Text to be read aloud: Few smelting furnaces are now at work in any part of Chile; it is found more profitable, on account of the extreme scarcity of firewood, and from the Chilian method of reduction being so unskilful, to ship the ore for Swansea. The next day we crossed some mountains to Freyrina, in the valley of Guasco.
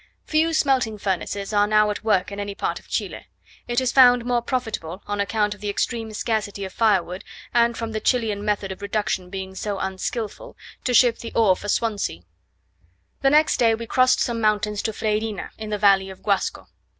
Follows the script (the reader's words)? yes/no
yes